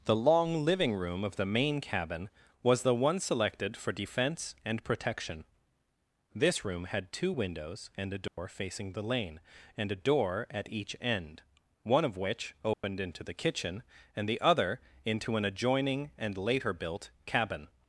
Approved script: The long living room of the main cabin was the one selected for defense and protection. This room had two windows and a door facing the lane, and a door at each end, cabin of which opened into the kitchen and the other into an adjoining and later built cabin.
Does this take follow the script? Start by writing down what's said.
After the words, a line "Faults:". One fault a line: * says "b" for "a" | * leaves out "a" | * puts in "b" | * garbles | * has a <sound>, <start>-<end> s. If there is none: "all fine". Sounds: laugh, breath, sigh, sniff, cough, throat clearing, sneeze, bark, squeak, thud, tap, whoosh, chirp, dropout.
The long living room of the main cabin was the one selected for defense and protection. This room had two windows and a door facing the lane, and a door at each end, one of which opened into the kitchen and the other into an adjoining and later built cabin.
Faults:
* has a dropout, 8.3-8.4 s
* says "one" for "cabin"
* has a dropout, 12.7-12.8 s